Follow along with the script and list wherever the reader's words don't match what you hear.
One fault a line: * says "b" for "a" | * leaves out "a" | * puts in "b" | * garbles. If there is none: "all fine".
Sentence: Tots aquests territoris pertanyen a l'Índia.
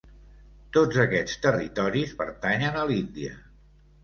all fine